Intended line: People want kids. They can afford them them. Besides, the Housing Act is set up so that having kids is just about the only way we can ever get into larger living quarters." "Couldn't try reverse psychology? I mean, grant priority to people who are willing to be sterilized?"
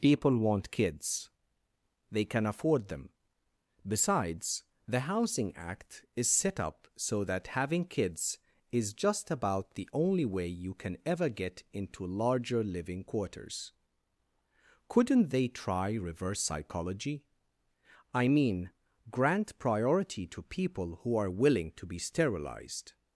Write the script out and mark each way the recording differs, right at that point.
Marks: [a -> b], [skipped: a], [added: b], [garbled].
People want kids. They can afford them [skipped: them.] Besides, the Housing Act is set up so that having kids is just about the only way [we -> you] can ever get into larger living quarters." "Couldn't [added: they] try reverse psychology? I mean, grant priority to people who are willing to be sterilized?"